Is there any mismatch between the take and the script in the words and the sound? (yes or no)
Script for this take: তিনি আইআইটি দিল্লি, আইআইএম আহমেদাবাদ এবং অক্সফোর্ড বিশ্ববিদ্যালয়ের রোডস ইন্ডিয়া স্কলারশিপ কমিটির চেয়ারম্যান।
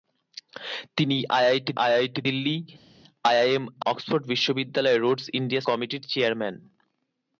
yes